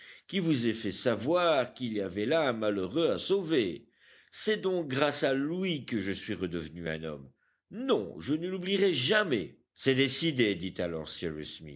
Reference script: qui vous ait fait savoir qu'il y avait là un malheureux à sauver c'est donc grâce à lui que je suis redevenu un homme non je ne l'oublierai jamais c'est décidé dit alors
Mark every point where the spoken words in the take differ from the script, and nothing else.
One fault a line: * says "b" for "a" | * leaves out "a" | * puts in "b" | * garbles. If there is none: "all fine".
all fine